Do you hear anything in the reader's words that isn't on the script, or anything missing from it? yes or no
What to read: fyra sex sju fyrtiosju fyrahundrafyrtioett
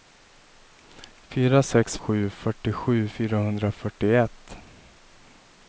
no